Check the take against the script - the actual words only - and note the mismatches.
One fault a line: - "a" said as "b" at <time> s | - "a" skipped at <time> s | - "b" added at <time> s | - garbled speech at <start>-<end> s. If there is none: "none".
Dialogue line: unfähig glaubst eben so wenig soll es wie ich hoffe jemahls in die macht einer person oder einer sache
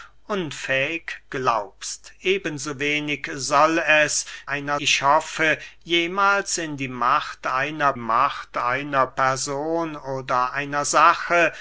- "wie" said as "einer" at 4.5 s
- "macht einer" added at 8.0 s